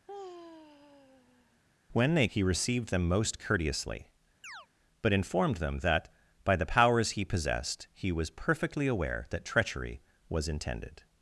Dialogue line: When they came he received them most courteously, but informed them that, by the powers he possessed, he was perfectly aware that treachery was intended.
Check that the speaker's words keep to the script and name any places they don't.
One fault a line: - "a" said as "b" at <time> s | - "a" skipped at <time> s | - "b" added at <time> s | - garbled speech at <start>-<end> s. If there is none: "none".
- "came" skipped at 2.3 s